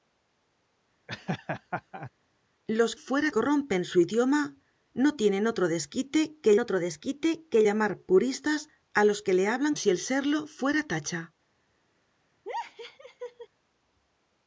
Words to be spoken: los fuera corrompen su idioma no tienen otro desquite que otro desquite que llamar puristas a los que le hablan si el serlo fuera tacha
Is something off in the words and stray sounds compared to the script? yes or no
yes